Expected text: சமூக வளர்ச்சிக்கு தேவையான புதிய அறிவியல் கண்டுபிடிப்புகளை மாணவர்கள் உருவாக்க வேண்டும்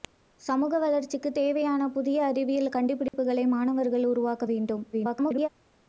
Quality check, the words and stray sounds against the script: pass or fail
fail